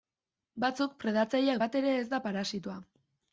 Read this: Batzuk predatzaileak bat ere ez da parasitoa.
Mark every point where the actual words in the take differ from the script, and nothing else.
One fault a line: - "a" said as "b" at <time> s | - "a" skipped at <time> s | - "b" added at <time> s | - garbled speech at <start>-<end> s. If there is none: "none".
none